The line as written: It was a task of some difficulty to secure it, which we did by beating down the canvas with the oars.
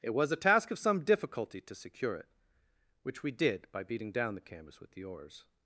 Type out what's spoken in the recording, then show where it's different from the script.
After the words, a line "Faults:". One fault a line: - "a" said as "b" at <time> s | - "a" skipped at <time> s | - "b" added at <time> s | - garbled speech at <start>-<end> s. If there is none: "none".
It was a task of some difficulty to secure it, which we did by beating down the canvas with the oars.
Faults:
none